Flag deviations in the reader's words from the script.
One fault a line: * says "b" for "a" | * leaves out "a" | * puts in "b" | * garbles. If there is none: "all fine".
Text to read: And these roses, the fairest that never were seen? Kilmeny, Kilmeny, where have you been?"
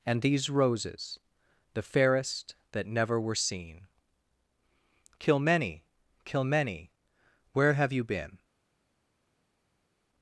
all fine